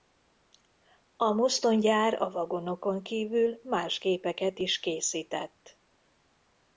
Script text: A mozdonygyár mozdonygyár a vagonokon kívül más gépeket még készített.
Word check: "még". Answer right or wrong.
wrong